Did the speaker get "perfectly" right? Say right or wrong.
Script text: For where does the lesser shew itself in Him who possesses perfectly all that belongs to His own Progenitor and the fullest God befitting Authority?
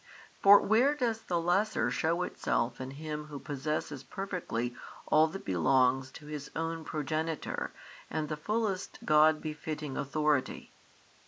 right